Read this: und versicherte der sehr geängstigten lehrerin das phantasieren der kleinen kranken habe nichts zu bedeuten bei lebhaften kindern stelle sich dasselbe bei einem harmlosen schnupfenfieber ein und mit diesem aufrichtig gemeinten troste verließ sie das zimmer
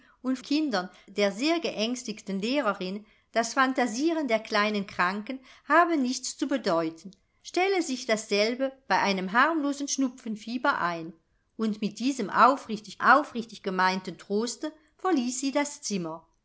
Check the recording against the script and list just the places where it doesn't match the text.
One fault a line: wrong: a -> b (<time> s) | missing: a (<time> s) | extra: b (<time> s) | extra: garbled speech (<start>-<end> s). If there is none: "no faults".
wrong: versicherte -> kindern (0.4 s)
missing: bei lebhaften kindern (7.1 s)
extra: aufrichtig (13.0 s)